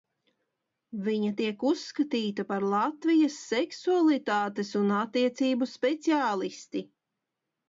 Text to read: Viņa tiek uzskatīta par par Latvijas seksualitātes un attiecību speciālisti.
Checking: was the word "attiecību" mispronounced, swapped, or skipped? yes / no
no